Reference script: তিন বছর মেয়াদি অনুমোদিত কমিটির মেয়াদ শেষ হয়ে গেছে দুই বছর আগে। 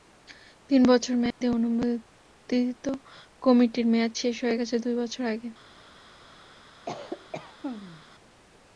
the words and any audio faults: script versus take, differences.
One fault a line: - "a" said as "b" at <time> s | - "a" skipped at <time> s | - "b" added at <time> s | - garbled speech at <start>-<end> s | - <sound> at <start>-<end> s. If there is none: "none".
- dropout at 1.3-1.4 s
- cough at 6.9-8.0 s